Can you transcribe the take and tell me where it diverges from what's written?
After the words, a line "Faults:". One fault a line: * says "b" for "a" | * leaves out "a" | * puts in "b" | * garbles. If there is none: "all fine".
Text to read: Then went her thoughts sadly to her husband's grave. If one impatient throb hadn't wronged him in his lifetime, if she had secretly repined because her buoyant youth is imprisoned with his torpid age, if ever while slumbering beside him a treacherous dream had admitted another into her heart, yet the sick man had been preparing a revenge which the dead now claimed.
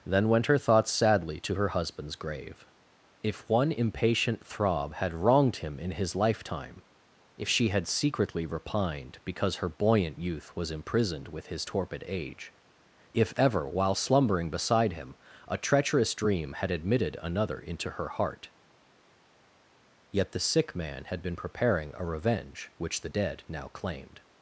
Then went her thoughts sadly to her husband's grave. If one impatient throb had wronged him in his lifetime, if she had secretly repined because her buoyant youth was imprisoned with his torpid age, if ever while slumbering beside him a treacherous dream had admitted another into her heart, yet the sick man had been preparing a revenge which the dead now claimed.
Faults:
* says "had" for "hadn't"
* says "was" for "is"